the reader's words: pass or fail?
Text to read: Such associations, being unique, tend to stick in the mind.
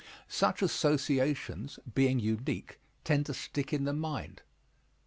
pass